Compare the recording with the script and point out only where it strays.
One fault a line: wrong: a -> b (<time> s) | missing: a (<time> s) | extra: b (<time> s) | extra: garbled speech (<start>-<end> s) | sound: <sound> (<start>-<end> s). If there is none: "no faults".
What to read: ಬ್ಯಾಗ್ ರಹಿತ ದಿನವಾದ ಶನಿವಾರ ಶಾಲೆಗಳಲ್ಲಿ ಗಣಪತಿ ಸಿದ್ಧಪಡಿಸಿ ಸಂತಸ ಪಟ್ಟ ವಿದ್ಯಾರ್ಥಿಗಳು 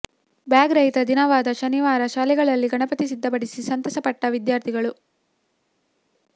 no faults